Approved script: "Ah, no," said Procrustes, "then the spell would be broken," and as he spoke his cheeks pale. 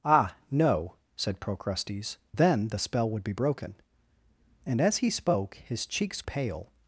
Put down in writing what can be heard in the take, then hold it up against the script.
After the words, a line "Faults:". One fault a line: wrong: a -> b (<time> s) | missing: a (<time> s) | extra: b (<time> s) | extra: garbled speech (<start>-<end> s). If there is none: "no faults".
"Ah, no," said Procrustes, "then the spell would be broken," and as he spoke his cheeks pale.
Faults:
no faults